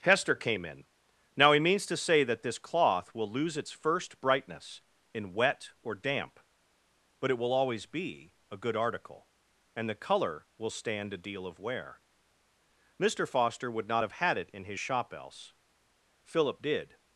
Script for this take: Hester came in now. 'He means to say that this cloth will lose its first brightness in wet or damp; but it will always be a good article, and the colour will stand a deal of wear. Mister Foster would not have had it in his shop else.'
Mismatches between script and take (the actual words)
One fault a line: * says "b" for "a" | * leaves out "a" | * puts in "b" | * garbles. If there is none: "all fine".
* puts in "Philip did"